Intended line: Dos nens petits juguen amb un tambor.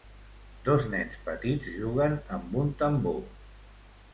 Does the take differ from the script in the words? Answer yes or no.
no